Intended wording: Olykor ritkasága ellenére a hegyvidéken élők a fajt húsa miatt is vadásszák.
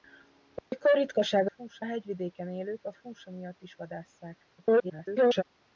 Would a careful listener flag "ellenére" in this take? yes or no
yes